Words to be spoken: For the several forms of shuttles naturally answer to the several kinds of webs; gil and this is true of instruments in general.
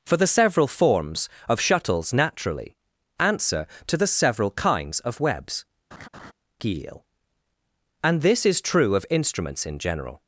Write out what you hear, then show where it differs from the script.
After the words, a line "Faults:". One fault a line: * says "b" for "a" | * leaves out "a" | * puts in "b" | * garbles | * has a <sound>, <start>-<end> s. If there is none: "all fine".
For the several forms of shuttles naturally answer to the several kinds of webs; gil and this is true of instruments in general.
Faults:
* has a laugh, 5.9-6.3 s